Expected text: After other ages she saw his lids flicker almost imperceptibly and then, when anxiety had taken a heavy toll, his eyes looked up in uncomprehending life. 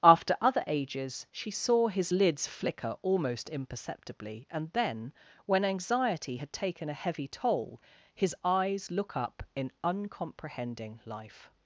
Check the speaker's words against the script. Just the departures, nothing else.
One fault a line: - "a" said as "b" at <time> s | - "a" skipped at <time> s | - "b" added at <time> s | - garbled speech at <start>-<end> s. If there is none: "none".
- "looked" said as "look" at 8.9 s